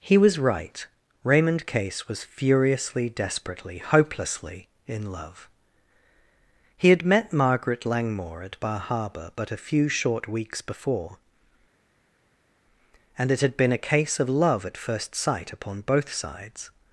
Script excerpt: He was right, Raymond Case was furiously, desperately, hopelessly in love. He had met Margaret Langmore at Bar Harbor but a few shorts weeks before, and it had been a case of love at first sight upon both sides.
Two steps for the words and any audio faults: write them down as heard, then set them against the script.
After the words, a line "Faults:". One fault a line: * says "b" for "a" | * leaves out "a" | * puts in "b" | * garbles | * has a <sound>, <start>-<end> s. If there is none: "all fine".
He was right, Raymond Case was furiously, desperately, hopelessly in love. He had met Margaret Langmore at Bar Harbor but a few short weeks before, and it had been a case of love at first sight upon both sides.
Faults:
* says "short" for "shorts"